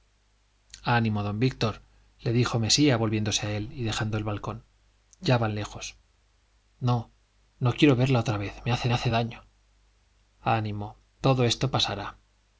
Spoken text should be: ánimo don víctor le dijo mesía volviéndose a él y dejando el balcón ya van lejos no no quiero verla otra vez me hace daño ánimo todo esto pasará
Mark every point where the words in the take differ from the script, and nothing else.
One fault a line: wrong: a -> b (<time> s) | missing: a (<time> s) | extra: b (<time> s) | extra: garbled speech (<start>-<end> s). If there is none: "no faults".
extra: hace (8.9 s)